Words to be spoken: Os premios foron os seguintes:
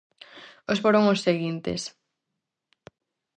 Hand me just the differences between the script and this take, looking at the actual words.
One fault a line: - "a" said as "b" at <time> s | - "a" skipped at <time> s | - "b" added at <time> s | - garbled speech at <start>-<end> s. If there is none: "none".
- "premios" skipped at 0.8 s